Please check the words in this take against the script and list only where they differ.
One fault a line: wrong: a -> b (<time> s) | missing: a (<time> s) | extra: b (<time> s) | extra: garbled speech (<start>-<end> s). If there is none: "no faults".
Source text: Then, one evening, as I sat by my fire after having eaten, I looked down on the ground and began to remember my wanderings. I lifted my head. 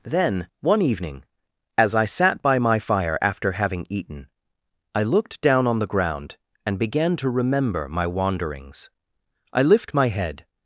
wrong: lifted -> lift (9.6 s)